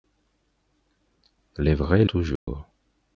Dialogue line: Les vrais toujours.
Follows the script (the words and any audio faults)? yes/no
no